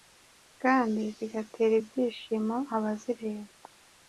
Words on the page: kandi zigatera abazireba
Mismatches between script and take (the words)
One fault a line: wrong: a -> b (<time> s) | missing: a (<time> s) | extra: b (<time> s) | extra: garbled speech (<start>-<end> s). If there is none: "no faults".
extra: ibyishimo (1.8 s)